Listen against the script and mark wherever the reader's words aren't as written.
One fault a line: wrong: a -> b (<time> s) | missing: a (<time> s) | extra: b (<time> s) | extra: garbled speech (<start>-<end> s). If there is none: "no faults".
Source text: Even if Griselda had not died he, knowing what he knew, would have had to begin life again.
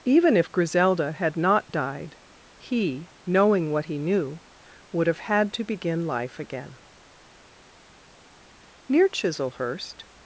extra: Near Chislehurst (8.9 s)